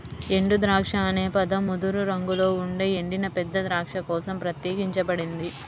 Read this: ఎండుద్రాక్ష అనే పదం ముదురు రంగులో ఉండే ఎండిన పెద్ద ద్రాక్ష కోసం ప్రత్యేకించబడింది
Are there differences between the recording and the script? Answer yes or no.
no